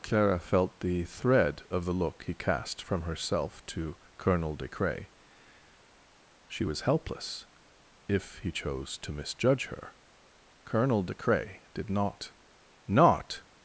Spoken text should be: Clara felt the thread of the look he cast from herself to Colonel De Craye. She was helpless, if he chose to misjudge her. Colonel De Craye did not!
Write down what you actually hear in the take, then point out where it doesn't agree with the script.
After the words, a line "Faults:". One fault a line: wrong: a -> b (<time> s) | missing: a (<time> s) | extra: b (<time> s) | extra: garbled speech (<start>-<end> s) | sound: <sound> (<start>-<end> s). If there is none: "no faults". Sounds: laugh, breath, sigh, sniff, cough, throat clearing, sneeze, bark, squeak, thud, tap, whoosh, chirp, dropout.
Clara felt the thread of the look he cast from herself to Colonel De Craye. She was helpless, if he chose to misjudge her. Colonel De Craye did not not!
Faults:
extra: not (12.9 s)